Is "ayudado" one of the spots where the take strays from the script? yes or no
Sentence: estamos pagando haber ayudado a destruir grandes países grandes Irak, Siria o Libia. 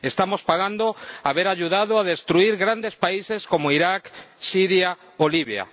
no